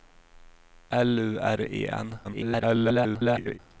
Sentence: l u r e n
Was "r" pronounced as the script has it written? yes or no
yes